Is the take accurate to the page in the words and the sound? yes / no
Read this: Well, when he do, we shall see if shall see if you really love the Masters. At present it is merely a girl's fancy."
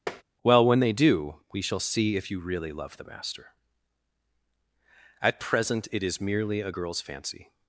no